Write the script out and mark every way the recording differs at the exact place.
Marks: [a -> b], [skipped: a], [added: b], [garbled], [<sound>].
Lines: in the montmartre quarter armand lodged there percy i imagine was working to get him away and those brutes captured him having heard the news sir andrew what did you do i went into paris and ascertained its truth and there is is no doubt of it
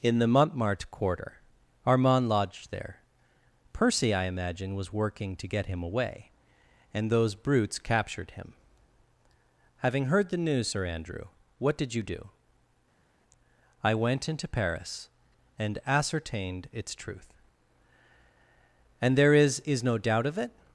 in the montmartre quarter armand lodged there percy i imagine was working to get him away and those brutes captured him having heard the news sir andrew what did you do i went into paris and ascertained its truth and there is is no doubt of it